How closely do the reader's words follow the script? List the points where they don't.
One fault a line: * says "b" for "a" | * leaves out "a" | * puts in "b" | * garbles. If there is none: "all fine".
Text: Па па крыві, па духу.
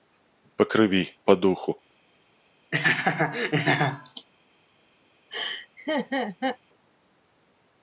* leaves out "па"